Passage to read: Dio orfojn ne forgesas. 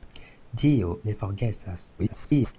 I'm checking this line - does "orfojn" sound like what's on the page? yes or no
no